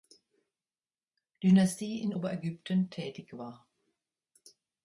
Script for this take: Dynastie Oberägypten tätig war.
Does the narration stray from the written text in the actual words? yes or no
yes